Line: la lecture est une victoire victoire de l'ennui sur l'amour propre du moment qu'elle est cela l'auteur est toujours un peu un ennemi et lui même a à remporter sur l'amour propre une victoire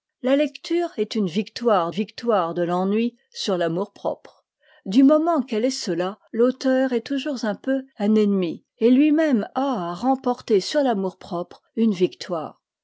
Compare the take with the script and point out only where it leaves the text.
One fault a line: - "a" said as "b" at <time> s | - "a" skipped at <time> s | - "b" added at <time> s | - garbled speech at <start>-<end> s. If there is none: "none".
none